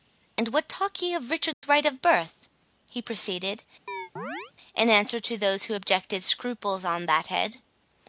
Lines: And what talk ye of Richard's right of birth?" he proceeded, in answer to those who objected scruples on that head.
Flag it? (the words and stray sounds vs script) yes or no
yes